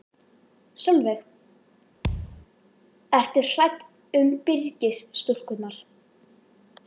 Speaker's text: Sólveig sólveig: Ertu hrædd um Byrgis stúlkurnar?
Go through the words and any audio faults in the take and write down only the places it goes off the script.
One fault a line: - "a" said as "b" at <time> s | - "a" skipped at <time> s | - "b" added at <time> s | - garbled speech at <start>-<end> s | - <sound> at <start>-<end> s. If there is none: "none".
- "sólveig" skipped at 1.2 s
- thud at 2.0-2.5 s